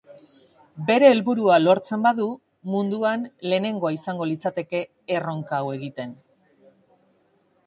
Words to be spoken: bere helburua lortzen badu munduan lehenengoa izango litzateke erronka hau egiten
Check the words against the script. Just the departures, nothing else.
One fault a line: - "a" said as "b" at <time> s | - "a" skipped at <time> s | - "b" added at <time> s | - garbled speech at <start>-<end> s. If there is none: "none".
none